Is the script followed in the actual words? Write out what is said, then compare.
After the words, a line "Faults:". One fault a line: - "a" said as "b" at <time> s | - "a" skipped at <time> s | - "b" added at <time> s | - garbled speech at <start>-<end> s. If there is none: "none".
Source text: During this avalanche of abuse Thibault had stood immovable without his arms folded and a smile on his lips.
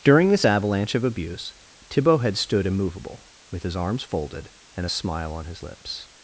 During this avalanche of abuse Thibault had stood immovable with his arms folded and a smile on his lips.
Faults:
- "without" said as "with" at 3.5 s